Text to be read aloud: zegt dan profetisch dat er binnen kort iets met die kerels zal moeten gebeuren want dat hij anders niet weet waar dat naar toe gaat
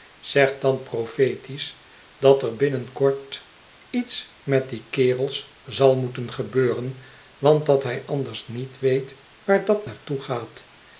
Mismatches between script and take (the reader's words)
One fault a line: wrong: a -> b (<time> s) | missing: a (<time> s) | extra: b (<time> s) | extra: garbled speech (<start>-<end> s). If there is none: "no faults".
no faults